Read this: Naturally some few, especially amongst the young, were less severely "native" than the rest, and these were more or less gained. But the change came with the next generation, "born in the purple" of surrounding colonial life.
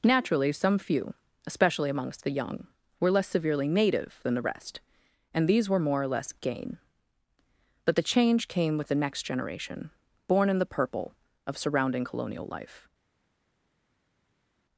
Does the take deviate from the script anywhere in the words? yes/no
yes